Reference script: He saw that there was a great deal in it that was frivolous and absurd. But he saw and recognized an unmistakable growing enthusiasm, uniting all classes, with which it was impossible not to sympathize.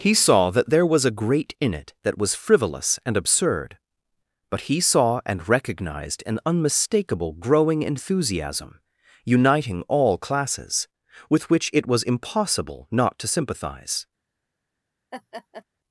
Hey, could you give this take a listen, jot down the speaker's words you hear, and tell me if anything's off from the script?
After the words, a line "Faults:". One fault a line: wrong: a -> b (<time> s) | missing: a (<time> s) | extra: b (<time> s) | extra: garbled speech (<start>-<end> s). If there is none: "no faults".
He saw that there was a great in it that was frivolous and absurd. But he saw and recognized an unmistakable growing enthusiasm, uniting all classes, with which it was impossible not to sympathize.
Faults:
missing: deal (1.5 s)